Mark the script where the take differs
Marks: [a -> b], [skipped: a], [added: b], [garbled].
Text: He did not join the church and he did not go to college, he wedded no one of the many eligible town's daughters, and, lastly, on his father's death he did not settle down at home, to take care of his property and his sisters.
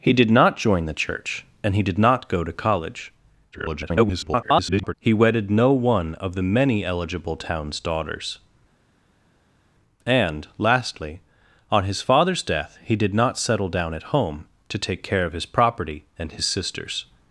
He did not join the church and he did not go to college, [garbled] he wedded no one of the many eligible town's daughters, and, lastly, on his father's death he did not settle down at home, to take care of his property and his sisters.